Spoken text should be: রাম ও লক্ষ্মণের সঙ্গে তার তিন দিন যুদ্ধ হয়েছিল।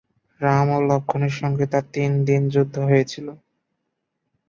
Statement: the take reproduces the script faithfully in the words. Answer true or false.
true